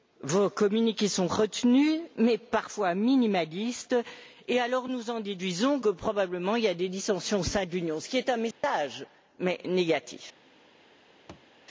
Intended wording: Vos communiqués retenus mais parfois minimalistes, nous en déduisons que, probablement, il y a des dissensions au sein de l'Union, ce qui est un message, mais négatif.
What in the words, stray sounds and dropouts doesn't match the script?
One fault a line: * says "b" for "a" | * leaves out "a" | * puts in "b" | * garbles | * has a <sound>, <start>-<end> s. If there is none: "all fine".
* puts in "sont"
* puts in "et alors"
* has a dropout, 8.5-8.6 s
* has a thud, 11.3-11.5 s